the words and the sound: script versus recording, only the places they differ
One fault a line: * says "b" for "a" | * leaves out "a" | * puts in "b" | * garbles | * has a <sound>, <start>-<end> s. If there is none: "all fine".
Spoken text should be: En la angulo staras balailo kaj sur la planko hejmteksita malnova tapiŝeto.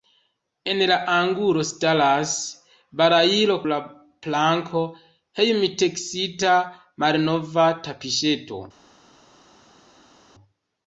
* leaves out "kaj sur"